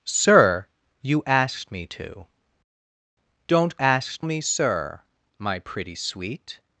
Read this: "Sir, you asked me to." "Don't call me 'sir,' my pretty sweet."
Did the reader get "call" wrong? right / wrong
wrong